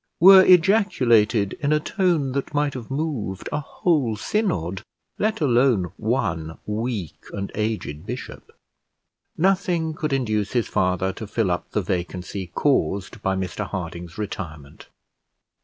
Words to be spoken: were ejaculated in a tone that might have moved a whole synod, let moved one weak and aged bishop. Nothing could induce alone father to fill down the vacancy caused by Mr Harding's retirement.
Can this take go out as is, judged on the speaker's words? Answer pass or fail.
fail